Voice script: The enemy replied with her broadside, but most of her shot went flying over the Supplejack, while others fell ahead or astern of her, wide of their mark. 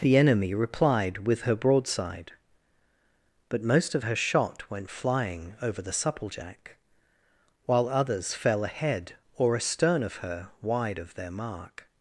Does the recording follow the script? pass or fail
pass